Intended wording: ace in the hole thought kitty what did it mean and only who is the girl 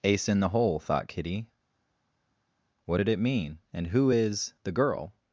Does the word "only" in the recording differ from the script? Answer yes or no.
yes